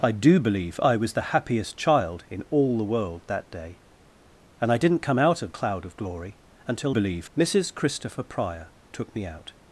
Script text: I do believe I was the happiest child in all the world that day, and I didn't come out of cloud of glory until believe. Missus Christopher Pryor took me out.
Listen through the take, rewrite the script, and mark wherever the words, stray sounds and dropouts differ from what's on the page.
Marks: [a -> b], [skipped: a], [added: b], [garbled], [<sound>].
I do believe I was the happiest child in all the world that day, and I didn't come out of cloud of glory until believe. Missus Christopher Pryor took me out.